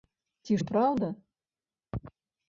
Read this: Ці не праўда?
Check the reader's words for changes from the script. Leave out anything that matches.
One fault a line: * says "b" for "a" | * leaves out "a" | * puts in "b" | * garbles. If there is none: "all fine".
all fine